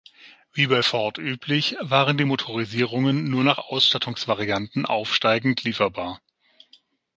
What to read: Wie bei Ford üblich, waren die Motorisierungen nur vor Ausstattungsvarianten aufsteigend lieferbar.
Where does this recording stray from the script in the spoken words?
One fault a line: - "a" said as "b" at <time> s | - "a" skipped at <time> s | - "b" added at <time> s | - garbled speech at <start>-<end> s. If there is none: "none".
- "vor" said as "nach" at 3.4 s